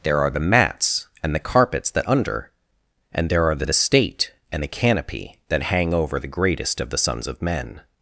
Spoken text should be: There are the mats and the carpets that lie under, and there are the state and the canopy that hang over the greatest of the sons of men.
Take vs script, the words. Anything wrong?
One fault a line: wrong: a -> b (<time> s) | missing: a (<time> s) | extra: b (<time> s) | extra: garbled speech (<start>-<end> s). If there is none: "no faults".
missing: lie (2.1 s)
extra: the (3.6 s)